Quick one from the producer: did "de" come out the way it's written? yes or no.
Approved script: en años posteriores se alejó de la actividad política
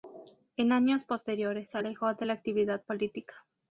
yes